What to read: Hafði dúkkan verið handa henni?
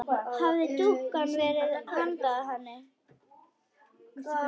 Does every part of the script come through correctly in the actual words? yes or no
yes